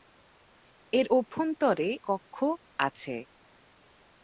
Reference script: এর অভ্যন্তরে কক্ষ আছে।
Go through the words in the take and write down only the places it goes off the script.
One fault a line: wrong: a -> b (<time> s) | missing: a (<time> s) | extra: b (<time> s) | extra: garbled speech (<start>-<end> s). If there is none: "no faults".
no faults